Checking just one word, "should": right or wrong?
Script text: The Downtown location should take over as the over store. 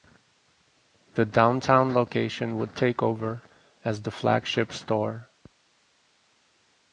wrong